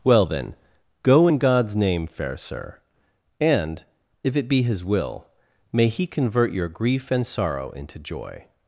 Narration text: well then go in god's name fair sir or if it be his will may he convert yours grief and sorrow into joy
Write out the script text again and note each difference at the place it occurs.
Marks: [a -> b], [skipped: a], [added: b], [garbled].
well then go in god's name fair sir [or -> and] if it be his will may he convert [yours -> your] grief and sorrow into joy